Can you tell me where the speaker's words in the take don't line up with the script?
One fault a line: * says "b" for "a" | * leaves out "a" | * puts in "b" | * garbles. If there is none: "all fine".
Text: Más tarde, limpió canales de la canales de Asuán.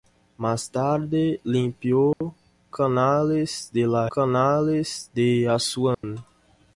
all fine